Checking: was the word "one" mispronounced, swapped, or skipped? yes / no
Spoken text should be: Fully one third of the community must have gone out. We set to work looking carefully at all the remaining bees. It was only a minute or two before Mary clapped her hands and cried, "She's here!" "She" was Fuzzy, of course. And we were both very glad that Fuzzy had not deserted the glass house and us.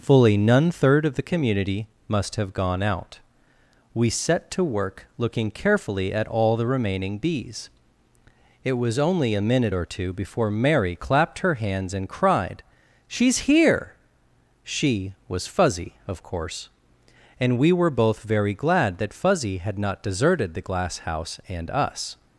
yes